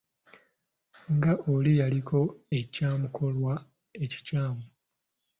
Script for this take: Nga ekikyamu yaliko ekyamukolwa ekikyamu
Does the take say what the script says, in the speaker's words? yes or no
no